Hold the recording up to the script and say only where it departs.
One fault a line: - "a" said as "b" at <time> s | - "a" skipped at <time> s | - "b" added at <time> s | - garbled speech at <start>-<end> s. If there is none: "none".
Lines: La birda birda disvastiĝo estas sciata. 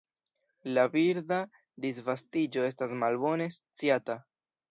- "birda" skipped at 1.4 s
- "malbone" added at 3.0 s